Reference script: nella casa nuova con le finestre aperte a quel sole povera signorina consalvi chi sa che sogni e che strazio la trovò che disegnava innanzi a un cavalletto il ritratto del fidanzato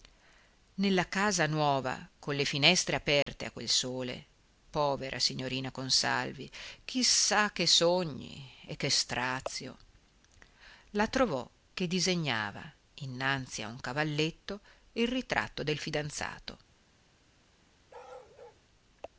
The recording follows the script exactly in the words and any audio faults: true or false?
false